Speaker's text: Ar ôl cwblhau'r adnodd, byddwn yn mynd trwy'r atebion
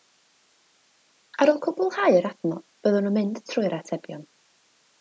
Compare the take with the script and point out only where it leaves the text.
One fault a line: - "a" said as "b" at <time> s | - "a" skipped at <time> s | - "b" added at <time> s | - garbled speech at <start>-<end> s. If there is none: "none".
none